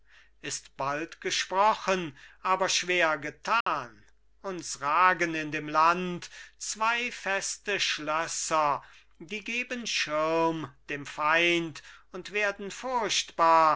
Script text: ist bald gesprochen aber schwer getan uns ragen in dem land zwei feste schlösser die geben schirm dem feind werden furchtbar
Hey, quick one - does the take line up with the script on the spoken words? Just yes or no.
no